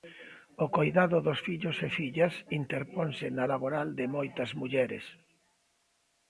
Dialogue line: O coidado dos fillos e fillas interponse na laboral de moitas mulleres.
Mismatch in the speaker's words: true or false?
false